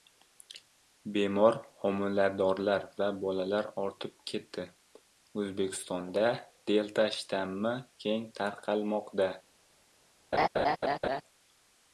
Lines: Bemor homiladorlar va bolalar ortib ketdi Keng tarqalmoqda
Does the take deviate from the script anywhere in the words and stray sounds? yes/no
yes